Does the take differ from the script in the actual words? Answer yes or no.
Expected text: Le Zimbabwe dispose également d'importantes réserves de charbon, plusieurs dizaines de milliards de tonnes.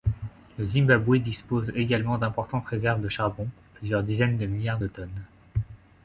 no